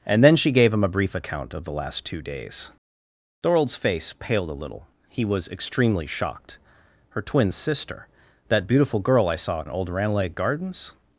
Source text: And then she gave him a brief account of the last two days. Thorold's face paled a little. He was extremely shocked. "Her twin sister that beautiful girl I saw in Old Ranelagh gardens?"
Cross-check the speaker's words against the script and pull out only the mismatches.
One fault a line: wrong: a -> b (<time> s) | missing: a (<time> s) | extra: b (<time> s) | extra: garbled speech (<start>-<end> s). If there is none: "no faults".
no faults